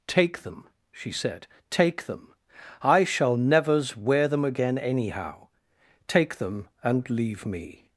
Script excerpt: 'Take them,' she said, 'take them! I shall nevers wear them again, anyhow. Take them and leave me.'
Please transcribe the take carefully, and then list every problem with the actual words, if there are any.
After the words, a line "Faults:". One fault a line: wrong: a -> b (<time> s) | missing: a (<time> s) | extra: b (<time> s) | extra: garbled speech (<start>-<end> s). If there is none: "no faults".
'Take them,' she said, 'take them! I shall nevers wear them again, anyhow. Take them and leave me.'
Faults:
no faults